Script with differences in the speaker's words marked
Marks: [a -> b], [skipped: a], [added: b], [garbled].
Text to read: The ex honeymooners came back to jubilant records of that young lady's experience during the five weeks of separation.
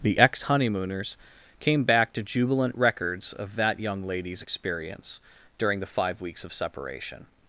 The ex honeymooners came back to jubilant records of that young lady's experience during the five weeks of separation.